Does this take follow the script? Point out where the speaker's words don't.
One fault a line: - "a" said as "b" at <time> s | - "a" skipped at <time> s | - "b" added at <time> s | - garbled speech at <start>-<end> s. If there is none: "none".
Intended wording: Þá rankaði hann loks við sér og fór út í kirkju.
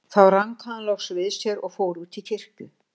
none